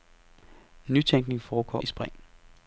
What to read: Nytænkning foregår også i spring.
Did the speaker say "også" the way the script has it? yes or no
no